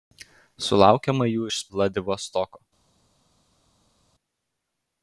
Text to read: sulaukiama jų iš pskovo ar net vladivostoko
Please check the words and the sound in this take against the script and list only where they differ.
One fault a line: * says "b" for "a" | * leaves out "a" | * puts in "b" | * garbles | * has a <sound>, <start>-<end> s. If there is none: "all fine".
* leaves out "pskovo ar net"